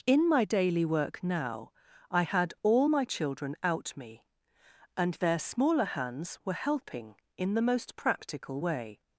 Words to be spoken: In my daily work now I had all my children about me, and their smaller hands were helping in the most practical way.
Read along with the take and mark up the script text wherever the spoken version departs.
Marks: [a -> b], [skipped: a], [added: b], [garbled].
In my daily work now I had all my children [about -> out] me, and their smaller hands were helping in the most practical way.